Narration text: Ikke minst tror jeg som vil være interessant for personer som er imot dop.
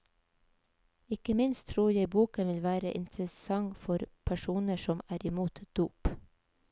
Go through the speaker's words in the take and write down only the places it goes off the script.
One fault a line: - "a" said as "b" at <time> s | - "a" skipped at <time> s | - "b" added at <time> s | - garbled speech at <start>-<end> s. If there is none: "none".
- "som" said as "boken" at 2.1 s